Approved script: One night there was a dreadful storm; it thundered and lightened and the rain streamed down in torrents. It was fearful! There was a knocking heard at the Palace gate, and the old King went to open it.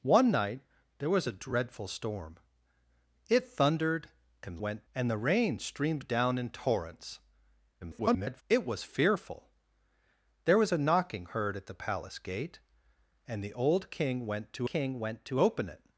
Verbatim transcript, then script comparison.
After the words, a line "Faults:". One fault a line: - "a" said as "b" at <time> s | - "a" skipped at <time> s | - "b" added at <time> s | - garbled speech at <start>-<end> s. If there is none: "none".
One night there was a dreadful storm; it thundered and went and the rain streamed down in torrents. [garbled] It was fearful! There was a knocking heard at the Palace gate, and the old King went to King went to open it.
Faults:
- "lightened" said as "went" at 4.6 s
- garbled speech at 7.8-8.4 s
- "King went to" added at 14.7 s